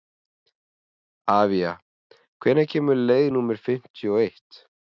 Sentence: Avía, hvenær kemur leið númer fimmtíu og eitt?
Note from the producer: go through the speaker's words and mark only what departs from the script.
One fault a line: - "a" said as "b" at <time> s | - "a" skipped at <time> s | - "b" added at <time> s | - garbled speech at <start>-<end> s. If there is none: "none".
none